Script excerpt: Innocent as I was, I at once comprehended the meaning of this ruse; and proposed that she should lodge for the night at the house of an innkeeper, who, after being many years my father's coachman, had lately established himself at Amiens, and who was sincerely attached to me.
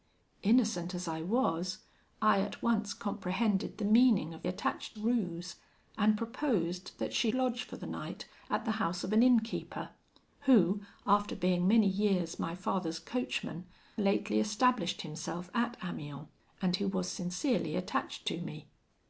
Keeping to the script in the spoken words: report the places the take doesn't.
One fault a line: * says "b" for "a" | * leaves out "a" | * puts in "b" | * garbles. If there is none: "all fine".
* says "attached" for "this"
* leaves out "should"
* leaves out "had"